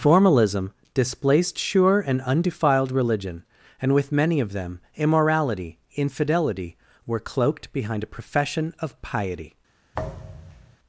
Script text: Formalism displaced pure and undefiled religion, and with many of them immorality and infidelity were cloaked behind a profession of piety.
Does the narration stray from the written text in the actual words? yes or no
yes